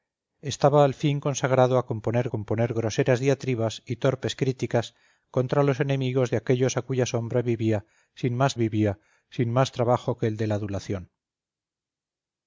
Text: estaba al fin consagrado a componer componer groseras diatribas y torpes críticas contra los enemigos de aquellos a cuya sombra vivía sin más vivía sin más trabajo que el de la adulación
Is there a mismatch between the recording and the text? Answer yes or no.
no